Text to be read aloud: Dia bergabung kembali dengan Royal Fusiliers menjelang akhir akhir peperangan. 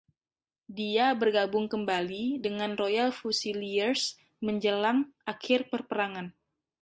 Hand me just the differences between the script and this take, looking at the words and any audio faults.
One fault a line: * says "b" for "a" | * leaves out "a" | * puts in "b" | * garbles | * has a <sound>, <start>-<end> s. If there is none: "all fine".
* leaves out "akhir"